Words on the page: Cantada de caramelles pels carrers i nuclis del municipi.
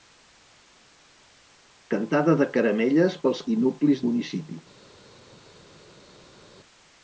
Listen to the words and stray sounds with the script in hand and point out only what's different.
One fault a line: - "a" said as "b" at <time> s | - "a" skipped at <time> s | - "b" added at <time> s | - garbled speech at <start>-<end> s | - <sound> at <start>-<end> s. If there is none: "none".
- "carrers" skipped at 3.5 s
- "del" skipped at 4.0 s